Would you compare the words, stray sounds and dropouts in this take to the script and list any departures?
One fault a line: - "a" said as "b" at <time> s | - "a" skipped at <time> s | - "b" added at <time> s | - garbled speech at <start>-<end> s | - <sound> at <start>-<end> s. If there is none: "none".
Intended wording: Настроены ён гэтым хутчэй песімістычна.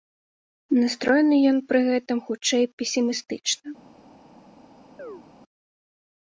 - "пры" added at 1.7 s
- chirp at 5.0-5.2 s